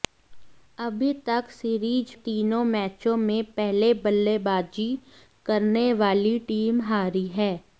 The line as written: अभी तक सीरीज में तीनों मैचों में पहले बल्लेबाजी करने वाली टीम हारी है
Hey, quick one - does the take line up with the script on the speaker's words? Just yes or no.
no